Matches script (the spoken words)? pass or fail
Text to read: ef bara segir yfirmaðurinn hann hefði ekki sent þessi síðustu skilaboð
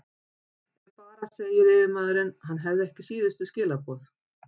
fail